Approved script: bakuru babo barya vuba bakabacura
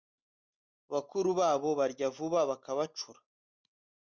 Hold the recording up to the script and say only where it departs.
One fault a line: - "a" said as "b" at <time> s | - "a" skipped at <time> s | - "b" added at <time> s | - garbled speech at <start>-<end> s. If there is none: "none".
none